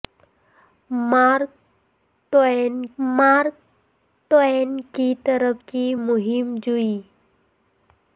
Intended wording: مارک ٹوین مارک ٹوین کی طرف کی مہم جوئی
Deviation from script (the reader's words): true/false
false